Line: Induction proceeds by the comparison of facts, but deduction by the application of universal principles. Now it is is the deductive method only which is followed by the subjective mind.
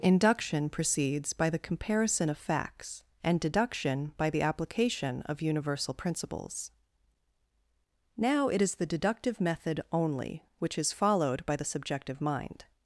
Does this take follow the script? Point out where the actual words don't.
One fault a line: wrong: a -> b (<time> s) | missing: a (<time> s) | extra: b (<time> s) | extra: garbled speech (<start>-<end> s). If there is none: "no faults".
wrong: but -> and (3.2 s)
missing: is (8.8 s)